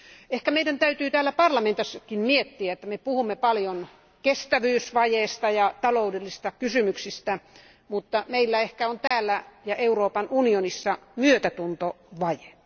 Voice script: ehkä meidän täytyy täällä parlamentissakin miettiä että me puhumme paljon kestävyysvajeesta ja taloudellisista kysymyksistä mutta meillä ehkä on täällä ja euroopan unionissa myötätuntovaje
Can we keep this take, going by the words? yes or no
yes